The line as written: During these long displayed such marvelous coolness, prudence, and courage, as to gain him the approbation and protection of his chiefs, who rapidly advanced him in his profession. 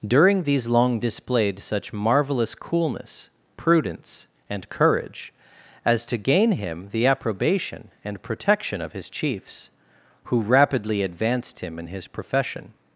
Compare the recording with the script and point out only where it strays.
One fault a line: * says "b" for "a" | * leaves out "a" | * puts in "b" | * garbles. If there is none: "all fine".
all fine